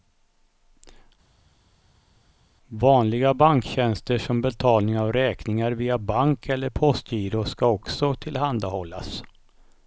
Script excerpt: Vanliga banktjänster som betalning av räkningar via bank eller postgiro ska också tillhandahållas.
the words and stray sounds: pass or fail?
pass